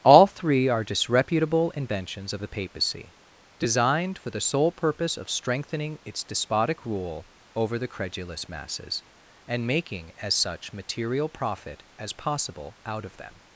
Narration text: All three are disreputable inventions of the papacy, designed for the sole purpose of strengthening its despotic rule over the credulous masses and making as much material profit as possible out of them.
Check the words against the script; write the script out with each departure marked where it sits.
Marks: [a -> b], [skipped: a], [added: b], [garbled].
All three are disreputable inventions of the papacy, designed for the sole purpose of strengthening its despotic rule over the credulous masses and making as [much -> such] material profit as possible out of them.